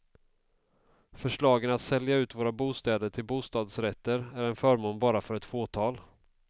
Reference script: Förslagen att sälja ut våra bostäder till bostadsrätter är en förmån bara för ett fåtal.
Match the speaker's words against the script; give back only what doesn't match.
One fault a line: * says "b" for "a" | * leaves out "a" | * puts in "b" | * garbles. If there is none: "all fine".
all fine